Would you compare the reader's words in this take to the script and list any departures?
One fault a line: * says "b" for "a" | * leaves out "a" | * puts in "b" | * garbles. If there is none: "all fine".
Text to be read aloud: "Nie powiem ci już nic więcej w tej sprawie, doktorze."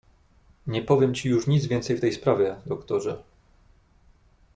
all fine